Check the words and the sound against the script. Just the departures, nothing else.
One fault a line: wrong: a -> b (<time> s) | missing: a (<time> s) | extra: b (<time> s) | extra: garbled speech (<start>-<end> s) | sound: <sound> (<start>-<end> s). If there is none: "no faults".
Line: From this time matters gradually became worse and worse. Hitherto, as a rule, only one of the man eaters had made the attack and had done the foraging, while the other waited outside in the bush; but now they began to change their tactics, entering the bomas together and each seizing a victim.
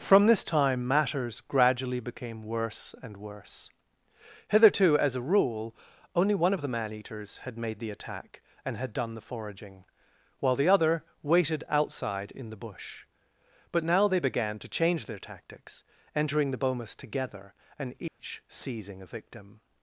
sound: dropout (18.1-18.2 s)